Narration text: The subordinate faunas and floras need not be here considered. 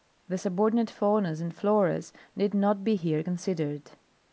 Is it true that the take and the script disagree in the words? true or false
false